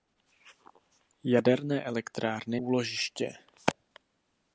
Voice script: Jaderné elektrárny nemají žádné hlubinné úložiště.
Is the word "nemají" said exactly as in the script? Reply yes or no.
no